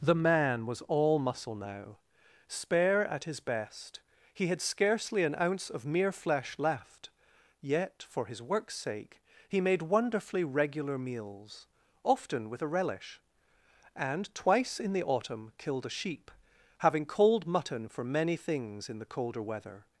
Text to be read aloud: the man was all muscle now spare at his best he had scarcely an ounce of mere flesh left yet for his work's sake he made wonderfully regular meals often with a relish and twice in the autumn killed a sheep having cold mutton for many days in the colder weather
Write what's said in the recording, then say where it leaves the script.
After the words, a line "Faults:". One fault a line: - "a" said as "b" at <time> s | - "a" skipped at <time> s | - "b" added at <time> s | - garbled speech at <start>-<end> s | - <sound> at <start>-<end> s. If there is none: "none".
the man was all muscle now spare at his best he had scarcely an ounce of mere flesh left yet for his work's sake he made wonderfully regular meals often with a relish and twice in the autumn killed a sheep having cold mutton for many things in the colder weather
Faults:
- "days" said as "things" at 18.4 s